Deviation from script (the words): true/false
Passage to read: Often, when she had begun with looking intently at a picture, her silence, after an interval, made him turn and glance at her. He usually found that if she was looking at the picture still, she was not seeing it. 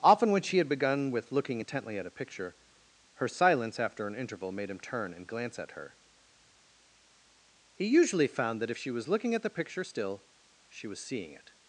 true